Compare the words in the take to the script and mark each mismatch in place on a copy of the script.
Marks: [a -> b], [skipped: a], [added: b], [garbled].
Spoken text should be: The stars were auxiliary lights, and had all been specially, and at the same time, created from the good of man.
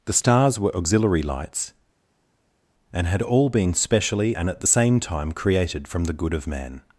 The stars were auxiliary lights, and had all been specially, and at the same time, created from the good of man.